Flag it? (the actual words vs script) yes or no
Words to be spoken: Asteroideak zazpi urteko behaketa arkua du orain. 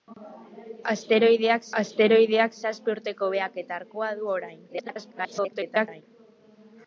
yes